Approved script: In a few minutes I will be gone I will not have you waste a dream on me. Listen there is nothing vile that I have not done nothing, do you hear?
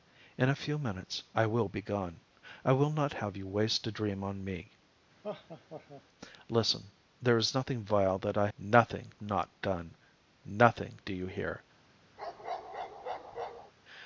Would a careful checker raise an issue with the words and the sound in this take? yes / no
yes